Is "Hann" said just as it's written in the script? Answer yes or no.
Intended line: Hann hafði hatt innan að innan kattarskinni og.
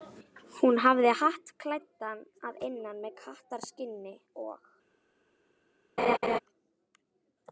no